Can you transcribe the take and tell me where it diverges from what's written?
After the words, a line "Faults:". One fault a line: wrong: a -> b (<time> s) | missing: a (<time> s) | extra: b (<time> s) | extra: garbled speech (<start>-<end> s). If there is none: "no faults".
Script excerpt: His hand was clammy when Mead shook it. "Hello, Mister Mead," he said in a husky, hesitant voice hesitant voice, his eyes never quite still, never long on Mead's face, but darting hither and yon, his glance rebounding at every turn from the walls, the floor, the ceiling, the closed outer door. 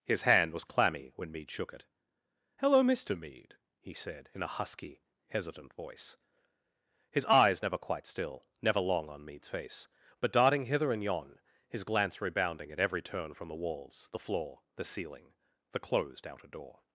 His hand was clammy when Mead shook it. "Hello, Mister Mead," he said in a husky, hesitant voice, his eyes never quite still, never long on Mead's face, but darting hither and yon, his glance rebounding at every turn from the walls, the floor, the ceiling, the closed outer door.
Faults:
missing: hesitant voice (6.2 s)